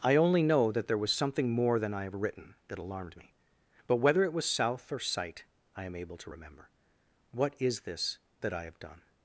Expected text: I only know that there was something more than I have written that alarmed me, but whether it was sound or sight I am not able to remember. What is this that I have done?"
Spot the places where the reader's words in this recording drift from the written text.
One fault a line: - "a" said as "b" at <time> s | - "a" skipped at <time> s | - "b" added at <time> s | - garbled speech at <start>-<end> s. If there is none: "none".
- "sound" said as "south" at 4.5 s
- "not" skipped at 5.9 s